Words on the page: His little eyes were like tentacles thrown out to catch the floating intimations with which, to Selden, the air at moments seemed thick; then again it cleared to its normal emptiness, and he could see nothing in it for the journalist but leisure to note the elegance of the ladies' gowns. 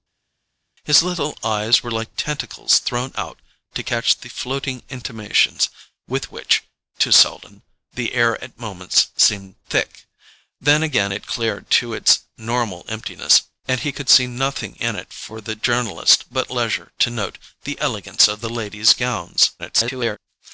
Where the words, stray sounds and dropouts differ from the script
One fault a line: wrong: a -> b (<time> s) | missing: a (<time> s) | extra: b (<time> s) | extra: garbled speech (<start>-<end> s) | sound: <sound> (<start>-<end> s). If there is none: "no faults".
extra: garbled speech (19.6-20.2 s)